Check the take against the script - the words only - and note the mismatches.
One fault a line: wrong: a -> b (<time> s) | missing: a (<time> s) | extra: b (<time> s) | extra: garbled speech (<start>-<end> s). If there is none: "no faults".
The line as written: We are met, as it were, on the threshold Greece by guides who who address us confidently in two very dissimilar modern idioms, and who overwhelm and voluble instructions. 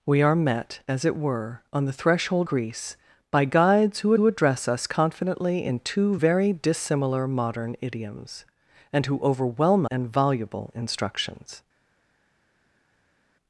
no faults